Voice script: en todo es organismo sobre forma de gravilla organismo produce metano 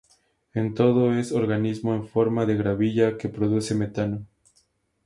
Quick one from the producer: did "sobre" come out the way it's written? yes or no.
no